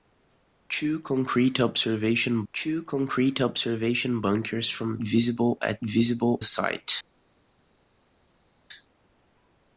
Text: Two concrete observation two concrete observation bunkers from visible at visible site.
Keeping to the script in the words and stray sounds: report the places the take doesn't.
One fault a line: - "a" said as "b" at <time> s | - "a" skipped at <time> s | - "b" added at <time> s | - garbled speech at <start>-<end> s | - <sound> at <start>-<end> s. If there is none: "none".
none